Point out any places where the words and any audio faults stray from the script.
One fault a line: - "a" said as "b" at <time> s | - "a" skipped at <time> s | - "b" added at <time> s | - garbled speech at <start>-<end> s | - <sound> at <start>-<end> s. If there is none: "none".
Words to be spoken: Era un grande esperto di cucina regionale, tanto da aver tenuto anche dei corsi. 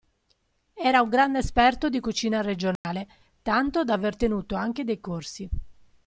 - dropout at 2.8-2.8 s